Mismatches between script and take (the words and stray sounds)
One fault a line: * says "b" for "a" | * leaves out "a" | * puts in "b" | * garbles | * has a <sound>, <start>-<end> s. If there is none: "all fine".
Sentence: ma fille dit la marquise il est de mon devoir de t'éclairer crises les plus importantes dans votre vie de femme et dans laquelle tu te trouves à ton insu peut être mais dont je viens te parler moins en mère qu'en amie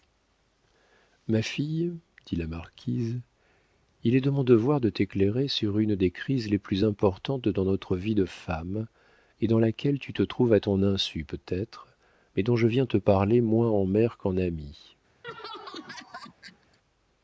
* puts in "sur une des"
* says "notre" for "votre"
* has a laugh, 15.2-16.8 s